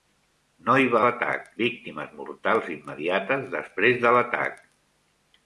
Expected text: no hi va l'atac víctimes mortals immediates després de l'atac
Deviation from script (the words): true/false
false